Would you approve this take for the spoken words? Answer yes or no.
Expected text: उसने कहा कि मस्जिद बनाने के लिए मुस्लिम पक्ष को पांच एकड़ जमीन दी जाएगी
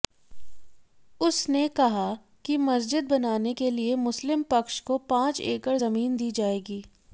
yes